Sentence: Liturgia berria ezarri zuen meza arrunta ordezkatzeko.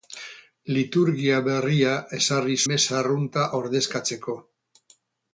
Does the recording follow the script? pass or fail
fail